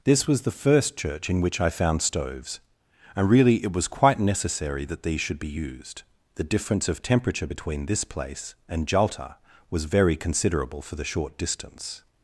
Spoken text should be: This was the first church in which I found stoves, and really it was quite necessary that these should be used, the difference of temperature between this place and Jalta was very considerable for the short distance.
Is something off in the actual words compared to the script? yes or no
no